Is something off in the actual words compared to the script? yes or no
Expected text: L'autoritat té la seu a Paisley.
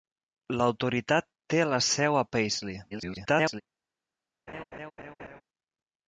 yes